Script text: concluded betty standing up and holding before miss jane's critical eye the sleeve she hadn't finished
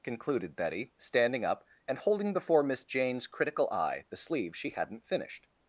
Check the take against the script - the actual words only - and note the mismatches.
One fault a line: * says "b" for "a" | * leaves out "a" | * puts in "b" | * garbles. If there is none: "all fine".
all fine